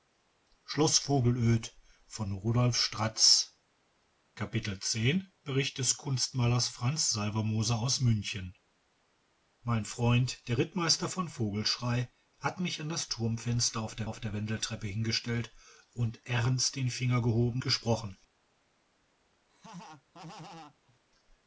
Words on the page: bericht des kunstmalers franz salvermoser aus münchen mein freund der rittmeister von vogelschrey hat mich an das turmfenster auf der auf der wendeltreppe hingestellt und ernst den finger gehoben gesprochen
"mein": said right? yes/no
yes